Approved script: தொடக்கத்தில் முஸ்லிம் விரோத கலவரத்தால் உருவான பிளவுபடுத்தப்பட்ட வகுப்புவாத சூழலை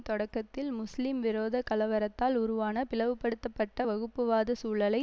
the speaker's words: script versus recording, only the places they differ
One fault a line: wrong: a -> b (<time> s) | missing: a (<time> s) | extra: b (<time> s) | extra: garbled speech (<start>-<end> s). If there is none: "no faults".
no faults